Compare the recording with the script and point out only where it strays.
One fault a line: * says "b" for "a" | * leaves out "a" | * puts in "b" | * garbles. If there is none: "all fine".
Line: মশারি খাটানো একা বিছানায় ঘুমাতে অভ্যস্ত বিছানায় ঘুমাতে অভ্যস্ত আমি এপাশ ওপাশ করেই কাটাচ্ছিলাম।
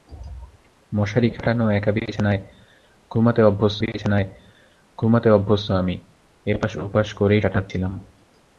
all fine